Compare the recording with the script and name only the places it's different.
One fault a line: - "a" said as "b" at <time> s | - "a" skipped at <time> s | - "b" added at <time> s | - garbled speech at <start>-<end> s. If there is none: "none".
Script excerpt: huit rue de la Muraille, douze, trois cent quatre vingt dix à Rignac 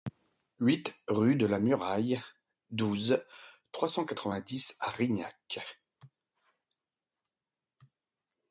none